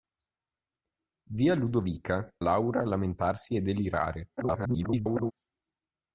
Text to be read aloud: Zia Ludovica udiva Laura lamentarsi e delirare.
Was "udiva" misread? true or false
true